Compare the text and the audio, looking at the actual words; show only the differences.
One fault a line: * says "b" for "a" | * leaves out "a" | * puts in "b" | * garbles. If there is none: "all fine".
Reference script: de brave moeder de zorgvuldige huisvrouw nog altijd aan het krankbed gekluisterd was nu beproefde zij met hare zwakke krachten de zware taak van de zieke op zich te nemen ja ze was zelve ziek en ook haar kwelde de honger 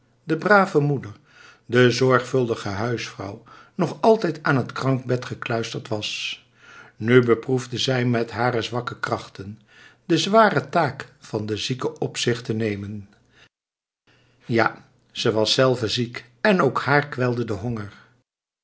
all fine